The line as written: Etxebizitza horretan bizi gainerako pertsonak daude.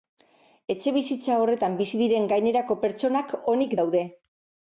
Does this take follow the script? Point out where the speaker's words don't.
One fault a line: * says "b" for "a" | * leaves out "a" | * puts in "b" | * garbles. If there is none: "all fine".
* puts in "diren"
* puts in "onik"